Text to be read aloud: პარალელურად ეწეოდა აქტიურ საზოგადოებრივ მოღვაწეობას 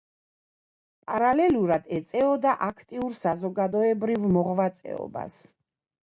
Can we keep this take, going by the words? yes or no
yes